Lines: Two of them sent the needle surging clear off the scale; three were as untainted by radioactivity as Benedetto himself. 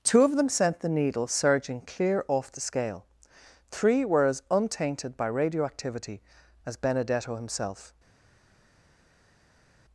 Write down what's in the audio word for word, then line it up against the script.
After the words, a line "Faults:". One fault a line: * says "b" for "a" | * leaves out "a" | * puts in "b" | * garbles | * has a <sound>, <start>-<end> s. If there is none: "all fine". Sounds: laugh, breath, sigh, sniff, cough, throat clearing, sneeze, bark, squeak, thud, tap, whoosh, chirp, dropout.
Two of them sent the needle surging clear off the scale; three were as untainted by radioactivity as Benedetto himself.
Faults:
all fine